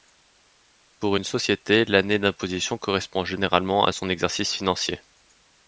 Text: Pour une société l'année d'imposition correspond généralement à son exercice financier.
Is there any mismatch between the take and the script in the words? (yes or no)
no